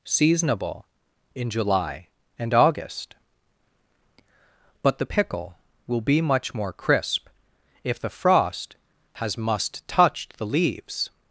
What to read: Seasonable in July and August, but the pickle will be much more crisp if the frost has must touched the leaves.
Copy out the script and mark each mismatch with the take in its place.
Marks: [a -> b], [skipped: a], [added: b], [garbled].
Seasonable in July and August, but the pickle will be much more crisp if the frost has must touched the leaves.